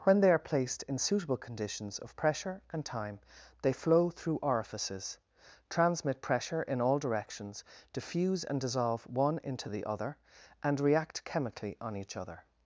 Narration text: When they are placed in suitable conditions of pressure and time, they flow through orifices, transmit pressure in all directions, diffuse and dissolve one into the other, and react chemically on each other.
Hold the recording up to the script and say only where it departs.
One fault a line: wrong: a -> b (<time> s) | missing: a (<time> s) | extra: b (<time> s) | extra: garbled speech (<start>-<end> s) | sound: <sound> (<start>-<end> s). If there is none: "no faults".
no faults